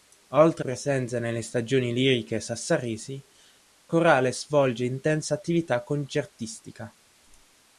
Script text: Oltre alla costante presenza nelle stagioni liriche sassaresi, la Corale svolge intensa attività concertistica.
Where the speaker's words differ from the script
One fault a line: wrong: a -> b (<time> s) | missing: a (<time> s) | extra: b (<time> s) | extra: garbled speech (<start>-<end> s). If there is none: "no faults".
missing: alla costante (0.7 s)
missing: la (3.2 s)